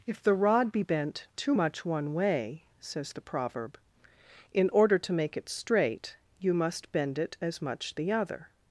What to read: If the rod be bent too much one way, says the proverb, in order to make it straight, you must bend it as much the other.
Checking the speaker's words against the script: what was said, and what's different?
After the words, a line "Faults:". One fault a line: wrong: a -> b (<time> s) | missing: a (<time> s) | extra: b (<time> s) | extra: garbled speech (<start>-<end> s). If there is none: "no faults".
If the rod be bent too much one way, says the proverb, in order to make it straight, you must bend it as much the other.
Faults:
no faults